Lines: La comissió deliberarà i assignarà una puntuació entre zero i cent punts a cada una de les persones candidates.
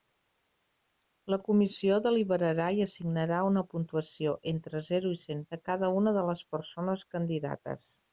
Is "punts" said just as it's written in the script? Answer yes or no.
no